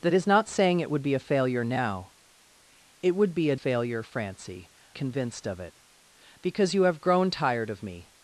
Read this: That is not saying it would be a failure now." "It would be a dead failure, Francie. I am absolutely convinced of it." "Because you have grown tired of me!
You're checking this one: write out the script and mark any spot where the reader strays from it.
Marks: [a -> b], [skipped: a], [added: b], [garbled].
That is not saying it would be a failure now." "It would be a [skipped: dead] failure, Francie. [skipped: I am absolutely] convinced of it." "Because you have grown tired of me!